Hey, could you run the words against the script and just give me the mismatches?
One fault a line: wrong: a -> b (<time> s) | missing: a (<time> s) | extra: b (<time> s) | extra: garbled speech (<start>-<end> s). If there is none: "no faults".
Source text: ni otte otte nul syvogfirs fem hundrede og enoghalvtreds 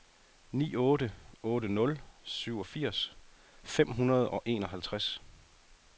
no faults